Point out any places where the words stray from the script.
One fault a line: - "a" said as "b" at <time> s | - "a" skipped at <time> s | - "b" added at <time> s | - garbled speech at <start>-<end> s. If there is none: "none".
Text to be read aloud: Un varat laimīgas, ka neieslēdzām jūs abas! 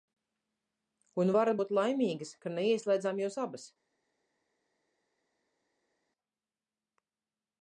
- "būt" added at 1.6 s